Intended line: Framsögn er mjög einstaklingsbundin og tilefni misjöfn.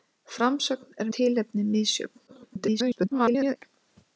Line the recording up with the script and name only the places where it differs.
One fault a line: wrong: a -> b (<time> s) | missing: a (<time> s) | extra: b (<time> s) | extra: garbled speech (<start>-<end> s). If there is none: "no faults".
missing: mjög einstaklingsbundin og (1.1 s)
extra: garbled speech (2.3-3.6 s)